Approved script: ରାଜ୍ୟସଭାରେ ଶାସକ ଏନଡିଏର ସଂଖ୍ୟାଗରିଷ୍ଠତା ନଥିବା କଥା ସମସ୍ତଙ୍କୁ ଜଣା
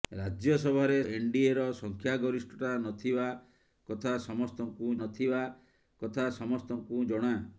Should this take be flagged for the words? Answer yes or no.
yes